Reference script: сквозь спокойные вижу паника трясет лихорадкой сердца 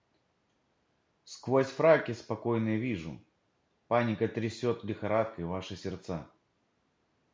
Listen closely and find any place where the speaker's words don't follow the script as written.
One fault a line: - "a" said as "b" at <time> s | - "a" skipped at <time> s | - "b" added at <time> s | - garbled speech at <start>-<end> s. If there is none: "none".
- "фраки" added at 1.7 s
- "ваши" added at 5.5 s